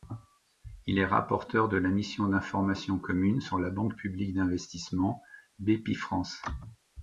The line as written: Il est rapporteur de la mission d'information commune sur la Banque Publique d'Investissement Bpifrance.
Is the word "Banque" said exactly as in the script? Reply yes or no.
yes